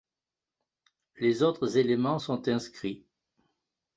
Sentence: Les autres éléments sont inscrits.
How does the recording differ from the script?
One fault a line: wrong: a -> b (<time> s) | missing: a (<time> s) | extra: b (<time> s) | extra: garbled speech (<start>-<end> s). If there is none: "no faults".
no faults